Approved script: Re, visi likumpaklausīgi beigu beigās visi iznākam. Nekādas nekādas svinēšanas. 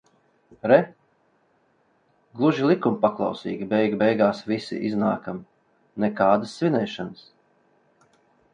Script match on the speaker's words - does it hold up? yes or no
no